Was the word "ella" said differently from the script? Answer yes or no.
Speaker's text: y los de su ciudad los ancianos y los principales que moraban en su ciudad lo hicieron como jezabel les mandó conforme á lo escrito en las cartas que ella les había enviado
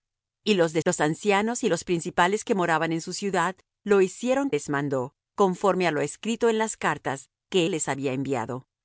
yes